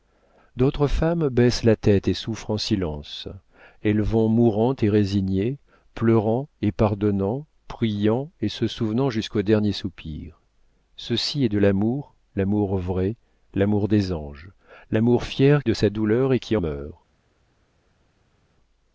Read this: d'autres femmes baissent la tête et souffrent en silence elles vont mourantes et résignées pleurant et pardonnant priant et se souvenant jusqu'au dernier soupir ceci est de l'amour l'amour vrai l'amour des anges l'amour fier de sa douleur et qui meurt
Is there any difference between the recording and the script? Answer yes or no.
no